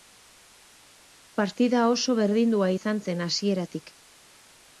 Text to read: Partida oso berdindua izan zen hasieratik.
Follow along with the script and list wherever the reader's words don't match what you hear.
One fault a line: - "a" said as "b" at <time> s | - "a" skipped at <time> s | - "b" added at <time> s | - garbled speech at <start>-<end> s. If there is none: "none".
none